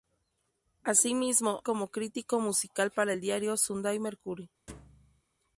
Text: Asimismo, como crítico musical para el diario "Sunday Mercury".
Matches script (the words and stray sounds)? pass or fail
fail